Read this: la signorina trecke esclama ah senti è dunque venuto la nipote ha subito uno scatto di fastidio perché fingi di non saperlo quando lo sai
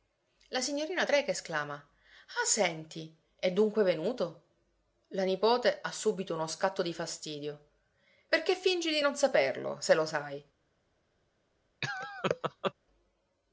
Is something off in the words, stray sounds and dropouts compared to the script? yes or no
yes